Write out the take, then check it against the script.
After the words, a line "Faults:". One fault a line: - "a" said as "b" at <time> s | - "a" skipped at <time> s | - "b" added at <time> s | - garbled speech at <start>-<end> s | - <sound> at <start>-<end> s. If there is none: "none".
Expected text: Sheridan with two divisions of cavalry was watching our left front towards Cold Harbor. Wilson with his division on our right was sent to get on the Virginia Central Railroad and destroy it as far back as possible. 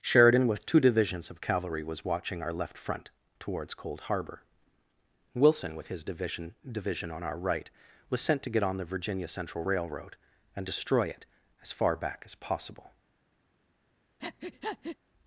Sheridan with two divisions of cavalry was watching our left front towards Cold Harbor. Wilson with his division division on our right was sent to get on the Virginia Central Railroad and destroy it as far back as possible.
Faults:
- "division" added at 6.7 s
- breath at 14.2-15.0 s